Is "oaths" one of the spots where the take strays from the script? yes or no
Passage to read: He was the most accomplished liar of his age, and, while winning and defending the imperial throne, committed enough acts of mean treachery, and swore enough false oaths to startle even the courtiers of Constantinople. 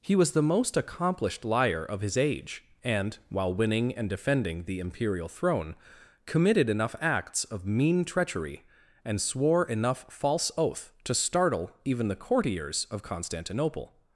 yes